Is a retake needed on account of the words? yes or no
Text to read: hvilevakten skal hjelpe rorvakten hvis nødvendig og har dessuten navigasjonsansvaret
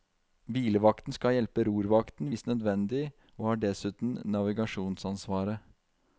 no